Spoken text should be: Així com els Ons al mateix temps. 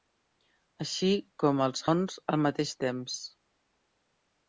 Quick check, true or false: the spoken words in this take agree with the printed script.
true